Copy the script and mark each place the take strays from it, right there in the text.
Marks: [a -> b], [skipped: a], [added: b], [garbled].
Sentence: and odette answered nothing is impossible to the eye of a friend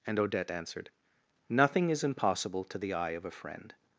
and odette answered nothing is impossible to the eye of a friend